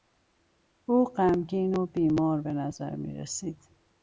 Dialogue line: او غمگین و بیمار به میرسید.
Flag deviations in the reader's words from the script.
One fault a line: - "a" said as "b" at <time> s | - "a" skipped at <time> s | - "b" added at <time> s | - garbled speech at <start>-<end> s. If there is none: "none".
- "نظر" added at 2.5 s